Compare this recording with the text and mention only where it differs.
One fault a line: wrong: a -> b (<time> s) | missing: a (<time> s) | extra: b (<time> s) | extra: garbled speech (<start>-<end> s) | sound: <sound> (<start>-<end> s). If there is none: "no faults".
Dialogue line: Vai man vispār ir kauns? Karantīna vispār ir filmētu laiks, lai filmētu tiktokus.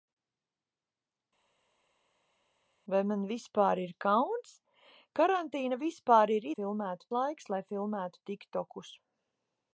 no faults